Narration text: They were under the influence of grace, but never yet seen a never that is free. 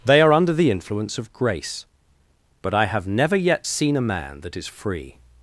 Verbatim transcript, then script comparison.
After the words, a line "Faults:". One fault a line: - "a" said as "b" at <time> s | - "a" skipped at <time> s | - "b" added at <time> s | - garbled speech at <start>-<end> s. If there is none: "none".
They are under the influence of grace, but I have never yet seen a man that is free.
Faults:
- "were" said as "are" at 0.2 s
- "I have" added at 2.7 s
- "never" said as "man" at 4.0 s